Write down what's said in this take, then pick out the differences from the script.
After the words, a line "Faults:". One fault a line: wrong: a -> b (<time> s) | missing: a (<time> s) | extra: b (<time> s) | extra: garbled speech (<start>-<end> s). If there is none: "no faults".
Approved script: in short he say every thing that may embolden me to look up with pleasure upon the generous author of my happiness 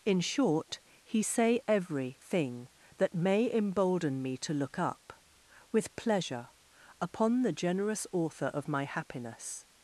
in short he say every thing that may embolden me to look up with pleasure upon the generous author of my happiness
Faults:
no faults